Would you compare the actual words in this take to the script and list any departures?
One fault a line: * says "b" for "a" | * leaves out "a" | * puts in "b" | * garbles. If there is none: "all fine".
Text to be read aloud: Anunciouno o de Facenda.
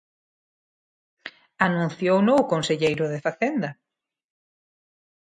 * puts in "conselleiro"